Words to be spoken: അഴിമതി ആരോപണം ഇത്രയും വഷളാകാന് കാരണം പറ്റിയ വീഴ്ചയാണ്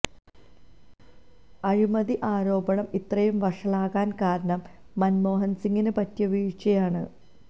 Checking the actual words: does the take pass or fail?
fail